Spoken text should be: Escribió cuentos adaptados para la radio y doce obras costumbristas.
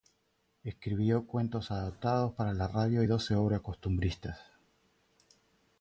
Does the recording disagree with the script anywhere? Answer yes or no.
no